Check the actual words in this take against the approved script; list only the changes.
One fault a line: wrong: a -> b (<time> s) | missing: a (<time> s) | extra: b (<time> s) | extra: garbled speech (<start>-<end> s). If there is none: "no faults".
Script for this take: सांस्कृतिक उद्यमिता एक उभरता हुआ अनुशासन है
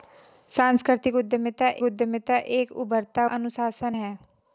extra: उद्यमिता (1.8 s)
missing: हुआ (3.2 s)